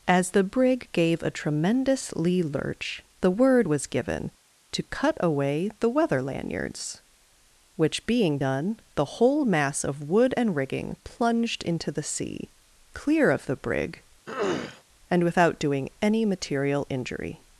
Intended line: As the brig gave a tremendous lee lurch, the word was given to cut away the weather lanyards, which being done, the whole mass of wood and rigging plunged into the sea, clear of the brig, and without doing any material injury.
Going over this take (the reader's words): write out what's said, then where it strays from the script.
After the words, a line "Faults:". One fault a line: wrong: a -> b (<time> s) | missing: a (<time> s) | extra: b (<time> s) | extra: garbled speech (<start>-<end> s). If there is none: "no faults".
As the brig gave a tremendous lee lurch, the word was given to cut away the weather lanyards, which being done, the whole mass of wood and rigging plunged into the sea, clear of the brig, and without doing any material injury.
Faults:
no faults